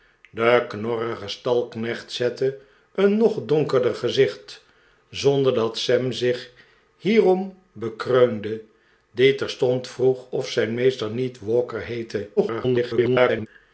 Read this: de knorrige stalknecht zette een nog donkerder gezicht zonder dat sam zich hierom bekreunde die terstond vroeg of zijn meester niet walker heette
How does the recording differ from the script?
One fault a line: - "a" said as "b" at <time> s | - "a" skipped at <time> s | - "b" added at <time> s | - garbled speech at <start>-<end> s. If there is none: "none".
- garbled speech at 12.4-13.5 s